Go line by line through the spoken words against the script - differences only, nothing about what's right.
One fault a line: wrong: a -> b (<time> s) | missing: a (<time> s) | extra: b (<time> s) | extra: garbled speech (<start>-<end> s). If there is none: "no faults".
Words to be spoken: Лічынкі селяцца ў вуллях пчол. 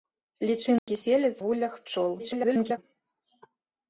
missing: ў (1.4 s)
extra: garbled speech (2.2-2.8 s)